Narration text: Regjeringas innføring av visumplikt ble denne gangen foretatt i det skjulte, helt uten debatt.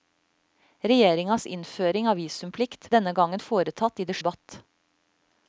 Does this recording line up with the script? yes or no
no